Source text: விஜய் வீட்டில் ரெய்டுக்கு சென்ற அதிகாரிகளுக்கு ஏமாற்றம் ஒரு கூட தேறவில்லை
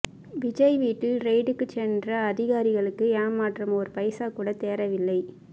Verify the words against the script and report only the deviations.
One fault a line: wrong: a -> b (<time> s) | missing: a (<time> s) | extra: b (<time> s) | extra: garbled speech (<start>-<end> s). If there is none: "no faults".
extra: பைசா (4.0 s)